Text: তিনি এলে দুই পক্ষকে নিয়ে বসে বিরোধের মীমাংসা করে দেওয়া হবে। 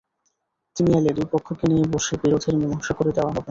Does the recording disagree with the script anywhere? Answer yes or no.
no